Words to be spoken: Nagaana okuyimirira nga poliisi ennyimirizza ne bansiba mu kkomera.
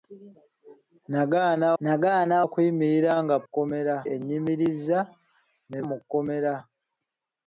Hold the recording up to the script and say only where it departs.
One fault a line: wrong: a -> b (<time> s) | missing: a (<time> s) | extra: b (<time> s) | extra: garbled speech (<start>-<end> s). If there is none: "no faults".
extra: nagaana (1.8 s)
wrong: poliisi -> kkomera (3.4 s)
missing: bansiba (5.8 s)